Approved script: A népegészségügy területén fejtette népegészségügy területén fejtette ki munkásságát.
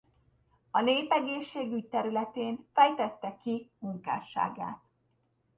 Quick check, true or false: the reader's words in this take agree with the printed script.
false